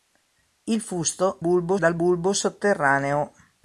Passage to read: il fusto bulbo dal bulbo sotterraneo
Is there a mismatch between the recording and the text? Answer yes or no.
no